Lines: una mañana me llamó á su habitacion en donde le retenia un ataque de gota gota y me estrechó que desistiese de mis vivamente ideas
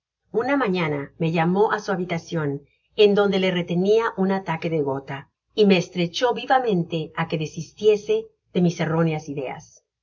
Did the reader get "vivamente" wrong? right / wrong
wrong